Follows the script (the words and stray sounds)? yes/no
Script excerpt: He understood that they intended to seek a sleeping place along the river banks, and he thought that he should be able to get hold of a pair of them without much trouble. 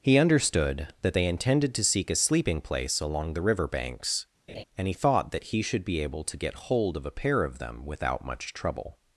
no